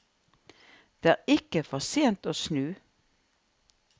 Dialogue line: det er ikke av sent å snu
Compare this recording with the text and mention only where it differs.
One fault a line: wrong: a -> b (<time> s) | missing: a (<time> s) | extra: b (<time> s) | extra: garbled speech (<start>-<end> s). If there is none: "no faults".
wrong: av -> for (1.7 s)